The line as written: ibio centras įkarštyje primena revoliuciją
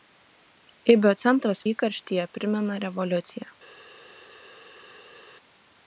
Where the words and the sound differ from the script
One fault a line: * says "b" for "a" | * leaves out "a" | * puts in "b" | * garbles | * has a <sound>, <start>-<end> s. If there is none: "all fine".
all fine